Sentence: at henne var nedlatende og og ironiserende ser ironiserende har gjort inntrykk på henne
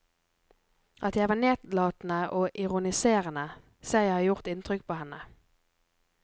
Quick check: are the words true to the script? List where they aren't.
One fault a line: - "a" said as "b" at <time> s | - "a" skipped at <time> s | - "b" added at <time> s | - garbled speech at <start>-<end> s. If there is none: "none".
- "henne" said as "jeg" at 1.1 s
- "og" skipped at 2.5 s
- "ironiserende" said as "jeg" at 4.0 s